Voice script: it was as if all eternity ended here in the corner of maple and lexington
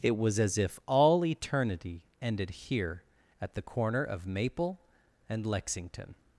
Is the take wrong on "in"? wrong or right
wrong